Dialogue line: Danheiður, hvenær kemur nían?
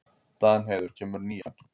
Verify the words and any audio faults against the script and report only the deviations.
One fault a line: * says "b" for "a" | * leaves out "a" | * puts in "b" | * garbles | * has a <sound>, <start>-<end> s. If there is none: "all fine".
* leaves out "hvenær"
* has a dropout, 1.4-1.5 s